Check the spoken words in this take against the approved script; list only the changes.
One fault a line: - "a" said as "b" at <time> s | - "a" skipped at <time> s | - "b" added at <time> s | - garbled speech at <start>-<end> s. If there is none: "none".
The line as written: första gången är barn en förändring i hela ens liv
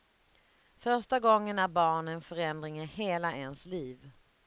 none